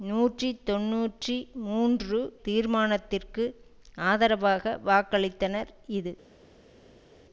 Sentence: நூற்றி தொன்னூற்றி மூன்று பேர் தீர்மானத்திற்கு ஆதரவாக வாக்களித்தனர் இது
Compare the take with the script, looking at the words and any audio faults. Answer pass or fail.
fail